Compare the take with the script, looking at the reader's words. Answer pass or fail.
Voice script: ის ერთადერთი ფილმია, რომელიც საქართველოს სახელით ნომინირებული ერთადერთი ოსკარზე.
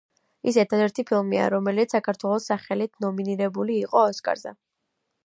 fail